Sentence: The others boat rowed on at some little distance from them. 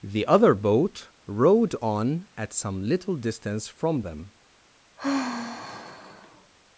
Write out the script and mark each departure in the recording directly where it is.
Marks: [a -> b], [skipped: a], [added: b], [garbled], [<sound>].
The [others -> other] boat rowed on at some little distance from them. [sigh]